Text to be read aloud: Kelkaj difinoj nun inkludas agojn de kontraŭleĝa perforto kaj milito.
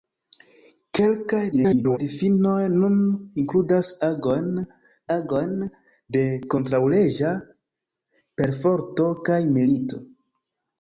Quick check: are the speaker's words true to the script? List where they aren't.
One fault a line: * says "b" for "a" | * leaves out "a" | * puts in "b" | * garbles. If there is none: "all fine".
* garbles
* puts in "agojn"